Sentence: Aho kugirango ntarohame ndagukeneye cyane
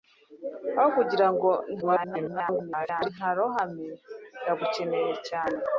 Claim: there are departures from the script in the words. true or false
true